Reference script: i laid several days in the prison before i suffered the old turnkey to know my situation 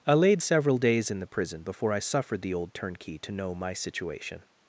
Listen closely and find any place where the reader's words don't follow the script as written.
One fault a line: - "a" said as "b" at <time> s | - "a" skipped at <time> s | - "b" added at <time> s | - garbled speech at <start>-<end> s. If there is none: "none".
none